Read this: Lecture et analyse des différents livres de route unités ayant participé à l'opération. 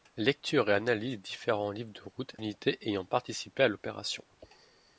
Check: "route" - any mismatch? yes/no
no